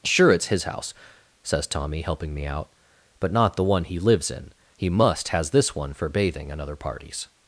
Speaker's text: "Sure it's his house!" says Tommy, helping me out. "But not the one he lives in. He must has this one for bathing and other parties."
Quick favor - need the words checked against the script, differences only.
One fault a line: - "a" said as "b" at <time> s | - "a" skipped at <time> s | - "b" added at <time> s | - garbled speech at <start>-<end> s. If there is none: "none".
none